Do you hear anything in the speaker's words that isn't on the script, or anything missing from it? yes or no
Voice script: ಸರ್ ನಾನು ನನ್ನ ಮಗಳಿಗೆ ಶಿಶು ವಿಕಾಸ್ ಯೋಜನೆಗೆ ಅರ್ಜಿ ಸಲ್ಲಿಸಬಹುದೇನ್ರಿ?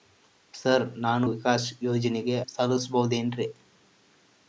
yes